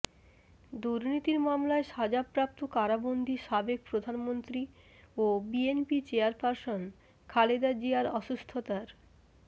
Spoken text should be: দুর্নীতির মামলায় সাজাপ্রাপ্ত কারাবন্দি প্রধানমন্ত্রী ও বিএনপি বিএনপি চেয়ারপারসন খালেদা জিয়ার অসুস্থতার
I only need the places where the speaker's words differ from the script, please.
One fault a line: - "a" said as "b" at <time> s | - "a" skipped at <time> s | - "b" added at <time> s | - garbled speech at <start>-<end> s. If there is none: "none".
- "সাবেক" added at 3.5 s
- "বিএনপি" skipped at 6.0 s